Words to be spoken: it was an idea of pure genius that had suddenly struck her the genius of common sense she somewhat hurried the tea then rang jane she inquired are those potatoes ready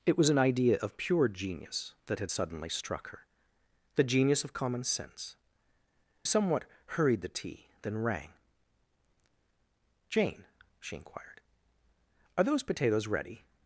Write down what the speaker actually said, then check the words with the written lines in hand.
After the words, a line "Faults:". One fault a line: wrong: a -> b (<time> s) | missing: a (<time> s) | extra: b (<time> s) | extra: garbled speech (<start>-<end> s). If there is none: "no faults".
it was an idea of pure genius that had suddenly struck her the genius of common sense somewhat hurried the tea then rang jane she inquired are those potatoes ready
Faults:
missing: she (5.3 s)